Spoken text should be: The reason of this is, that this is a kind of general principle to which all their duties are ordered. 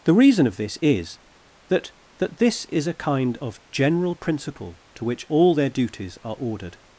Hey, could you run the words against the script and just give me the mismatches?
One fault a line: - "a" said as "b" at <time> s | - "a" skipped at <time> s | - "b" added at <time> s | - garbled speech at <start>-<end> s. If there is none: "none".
- "that" added at 2.2 s